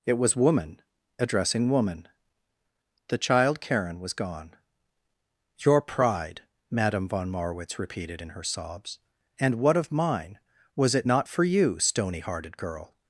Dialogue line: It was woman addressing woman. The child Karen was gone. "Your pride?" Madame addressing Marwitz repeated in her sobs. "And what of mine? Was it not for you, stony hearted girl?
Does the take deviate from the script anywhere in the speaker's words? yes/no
yes